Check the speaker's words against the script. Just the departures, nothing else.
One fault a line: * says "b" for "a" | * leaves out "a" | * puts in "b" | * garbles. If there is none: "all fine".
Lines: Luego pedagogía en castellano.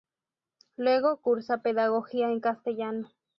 * puts in "cursa"